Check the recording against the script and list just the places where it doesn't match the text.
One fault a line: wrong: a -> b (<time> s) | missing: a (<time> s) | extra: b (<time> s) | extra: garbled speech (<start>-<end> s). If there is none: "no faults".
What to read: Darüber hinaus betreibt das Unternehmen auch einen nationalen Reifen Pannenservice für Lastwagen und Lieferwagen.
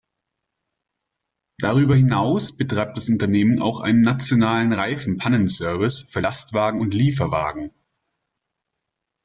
no faults